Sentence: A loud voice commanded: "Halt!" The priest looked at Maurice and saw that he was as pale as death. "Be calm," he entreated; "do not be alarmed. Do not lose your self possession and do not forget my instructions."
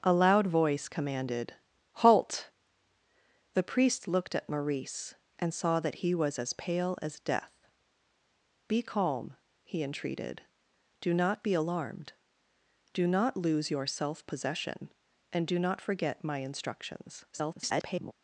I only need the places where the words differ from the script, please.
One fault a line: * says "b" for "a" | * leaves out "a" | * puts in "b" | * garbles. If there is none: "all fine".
* garbles